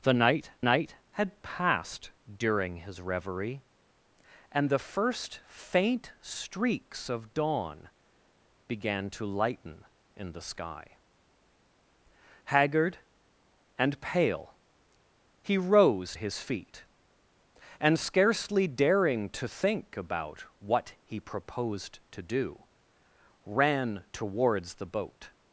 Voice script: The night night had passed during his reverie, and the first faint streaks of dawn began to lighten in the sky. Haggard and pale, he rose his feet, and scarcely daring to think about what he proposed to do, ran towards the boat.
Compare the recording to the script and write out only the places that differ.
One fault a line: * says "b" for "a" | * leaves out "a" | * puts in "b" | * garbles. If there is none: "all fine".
all fine